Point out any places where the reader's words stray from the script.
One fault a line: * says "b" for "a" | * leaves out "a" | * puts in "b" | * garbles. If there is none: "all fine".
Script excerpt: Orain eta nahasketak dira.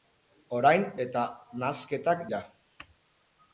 all fine